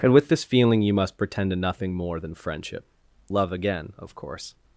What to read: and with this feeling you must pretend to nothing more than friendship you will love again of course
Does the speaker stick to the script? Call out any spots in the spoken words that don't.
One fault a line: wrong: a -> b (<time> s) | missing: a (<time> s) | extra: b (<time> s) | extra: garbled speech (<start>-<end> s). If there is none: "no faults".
missing: you will (2.9 s)